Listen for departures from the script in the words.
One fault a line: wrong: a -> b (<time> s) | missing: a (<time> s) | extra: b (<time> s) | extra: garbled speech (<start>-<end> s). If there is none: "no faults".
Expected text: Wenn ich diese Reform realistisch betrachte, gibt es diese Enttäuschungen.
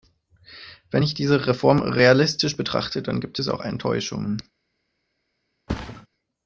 extra: dann (3.0 s)
wrong: diese -> auch (3.5 s)